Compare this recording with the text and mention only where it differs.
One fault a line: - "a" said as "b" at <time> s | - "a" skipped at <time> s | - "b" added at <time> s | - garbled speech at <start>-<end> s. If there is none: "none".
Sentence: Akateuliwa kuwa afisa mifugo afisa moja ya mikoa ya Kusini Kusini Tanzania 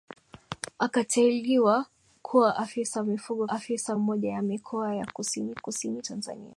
none